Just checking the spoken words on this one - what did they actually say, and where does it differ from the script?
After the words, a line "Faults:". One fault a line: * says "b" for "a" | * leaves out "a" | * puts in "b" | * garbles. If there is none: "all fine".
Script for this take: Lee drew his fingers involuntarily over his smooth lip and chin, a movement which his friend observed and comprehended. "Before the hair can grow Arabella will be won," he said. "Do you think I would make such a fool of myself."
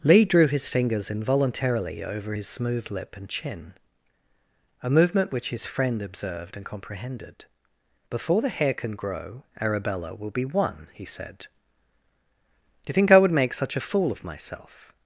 Lee drew his fingers involuntarily over his smooth lip and chin, a movement which his friend observed and comprehended. "Before the hair can grow Arabella will be won," he said. "Do you think I would make such a fool of myself."
Faults:
all fine